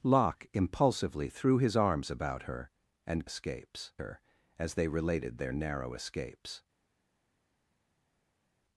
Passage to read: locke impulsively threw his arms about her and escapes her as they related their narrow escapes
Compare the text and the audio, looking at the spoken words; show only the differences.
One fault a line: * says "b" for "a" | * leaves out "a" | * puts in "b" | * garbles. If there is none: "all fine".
all fine